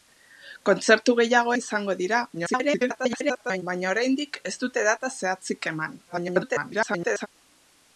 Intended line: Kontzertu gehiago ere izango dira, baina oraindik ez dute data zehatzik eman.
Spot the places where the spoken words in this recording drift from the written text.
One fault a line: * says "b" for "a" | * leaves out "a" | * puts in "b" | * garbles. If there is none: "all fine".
* leaves out "ere"
* garbles
* garbles